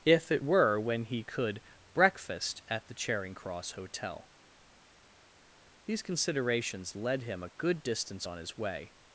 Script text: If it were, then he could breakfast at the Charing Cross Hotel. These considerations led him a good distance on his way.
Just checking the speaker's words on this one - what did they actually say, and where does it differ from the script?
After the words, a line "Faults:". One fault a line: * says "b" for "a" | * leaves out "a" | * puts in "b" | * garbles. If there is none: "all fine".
If it were, when he could breakfast at the Charing Cross Hotel. These considerations led him a good distance on his way.
Faults:
* says "when" for "then"